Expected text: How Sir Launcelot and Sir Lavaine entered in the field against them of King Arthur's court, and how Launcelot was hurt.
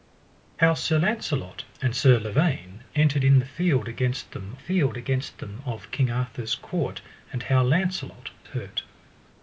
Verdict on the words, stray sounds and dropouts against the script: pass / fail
fail